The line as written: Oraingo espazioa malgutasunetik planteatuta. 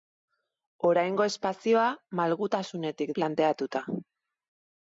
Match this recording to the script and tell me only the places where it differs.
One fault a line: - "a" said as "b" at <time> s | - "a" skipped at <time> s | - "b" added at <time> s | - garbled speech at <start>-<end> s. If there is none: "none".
none